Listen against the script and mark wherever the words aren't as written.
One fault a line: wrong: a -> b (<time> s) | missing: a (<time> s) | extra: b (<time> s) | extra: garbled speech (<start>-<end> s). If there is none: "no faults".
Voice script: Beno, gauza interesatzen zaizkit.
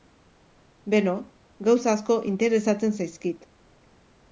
extra: asko (1.9 s)